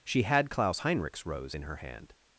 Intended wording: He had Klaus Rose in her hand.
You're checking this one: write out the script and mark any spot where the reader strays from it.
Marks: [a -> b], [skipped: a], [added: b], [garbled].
[He -> She] had Klaus [added: Heinrich's] Rose in her hand.